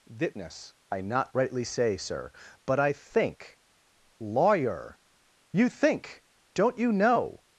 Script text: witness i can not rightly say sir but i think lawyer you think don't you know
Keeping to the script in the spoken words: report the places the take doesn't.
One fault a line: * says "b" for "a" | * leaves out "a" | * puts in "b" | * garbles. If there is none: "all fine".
* leaves out "can"